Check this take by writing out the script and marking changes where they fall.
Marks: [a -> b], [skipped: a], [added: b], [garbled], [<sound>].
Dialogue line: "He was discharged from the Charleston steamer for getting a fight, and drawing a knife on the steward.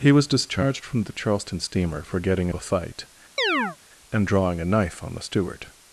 "He was discharged from the Charleston steamer for getting a fight, [chirp] and drawing a knife on the steward.